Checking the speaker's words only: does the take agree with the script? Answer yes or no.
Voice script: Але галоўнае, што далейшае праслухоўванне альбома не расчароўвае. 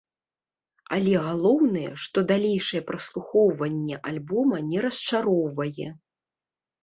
yes